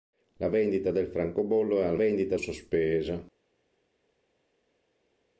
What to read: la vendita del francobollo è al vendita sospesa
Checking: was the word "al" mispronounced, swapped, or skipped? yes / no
no